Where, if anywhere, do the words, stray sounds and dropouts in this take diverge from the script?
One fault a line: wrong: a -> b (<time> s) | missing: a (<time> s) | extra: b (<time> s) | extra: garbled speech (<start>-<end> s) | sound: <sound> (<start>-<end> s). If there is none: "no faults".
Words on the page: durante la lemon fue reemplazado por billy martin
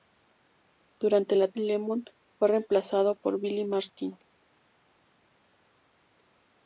no faults